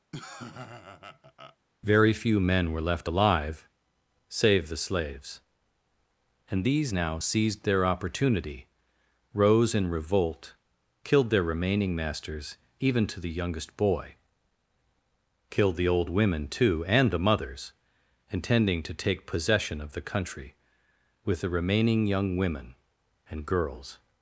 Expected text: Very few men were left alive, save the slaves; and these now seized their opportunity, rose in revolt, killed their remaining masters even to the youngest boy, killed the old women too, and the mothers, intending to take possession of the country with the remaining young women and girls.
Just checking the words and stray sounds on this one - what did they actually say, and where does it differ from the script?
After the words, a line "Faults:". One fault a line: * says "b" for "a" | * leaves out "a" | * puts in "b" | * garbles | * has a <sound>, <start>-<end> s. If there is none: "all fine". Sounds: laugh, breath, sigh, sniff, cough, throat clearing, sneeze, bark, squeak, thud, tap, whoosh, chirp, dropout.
Very few men were left alive, save the slaves; and these now seized their opportunity, rose in revolt, killed their remaining masters even to the youngest boy, killed the old women too, and the mothers, intending to take possession of the country with the remaining young women and girls.
Faults:
* has a laugh, 0.1-1.6 s